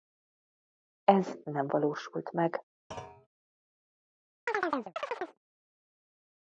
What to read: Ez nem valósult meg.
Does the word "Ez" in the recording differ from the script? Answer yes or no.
no